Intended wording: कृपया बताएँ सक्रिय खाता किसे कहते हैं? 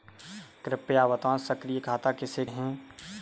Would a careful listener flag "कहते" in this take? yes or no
yes